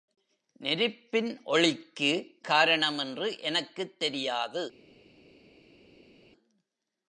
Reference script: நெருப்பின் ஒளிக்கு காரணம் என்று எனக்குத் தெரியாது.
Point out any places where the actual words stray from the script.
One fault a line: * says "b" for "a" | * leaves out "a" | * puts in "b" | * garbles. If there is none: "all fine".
all fine